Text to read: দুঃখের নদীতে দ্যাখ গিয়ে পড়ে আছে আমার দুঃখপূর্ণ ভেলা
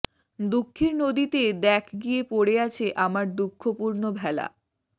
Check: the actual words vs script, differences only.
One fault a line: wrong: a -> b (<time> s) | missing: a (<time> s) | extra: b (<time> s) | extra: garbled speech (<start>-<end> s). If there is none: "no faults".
no faults